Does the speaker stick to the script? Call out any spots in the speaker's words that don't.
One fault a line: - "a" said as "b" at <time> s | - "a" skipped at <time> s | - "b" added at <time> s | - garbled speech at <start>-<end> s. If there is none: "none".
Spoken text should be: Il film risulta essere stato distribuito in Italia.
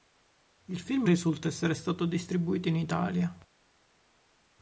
none